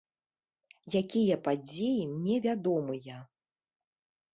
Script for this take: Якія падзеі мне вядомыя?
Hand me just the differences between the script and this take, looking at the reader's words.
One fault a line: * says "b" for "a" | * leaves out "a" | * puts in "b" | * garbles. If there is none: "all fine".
all fine